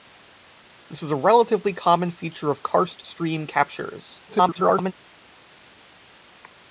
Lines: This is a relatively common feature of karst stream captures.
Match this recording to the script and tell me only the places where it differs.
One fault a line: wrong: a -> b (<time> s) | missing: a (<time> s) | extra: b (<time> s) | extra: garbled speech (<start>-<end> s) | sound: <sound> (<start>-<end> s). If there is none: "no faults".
extra: garbled speech (4.3-4.9 s)